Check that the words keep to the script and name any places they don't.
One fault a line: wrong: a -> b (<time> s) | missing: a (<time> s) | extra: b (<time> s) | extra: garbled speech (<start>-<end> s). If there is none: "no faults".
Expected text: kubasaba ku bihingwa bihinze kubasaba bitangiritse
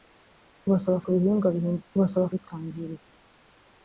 no faults